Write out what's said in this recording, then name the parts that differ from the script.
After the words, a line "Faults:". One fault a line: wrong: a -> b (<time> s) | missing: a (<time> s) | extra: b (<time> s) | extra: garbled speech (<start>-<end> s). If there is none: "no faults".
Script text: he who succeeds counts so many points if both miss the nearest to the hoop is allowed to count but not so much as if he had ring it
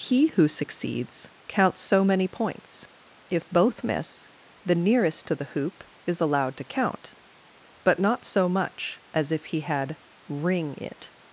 he who succeeds counts so many points if both miss the nearest to the hoop is allowed to count but not so much as if he had ring it
Faults:
no faults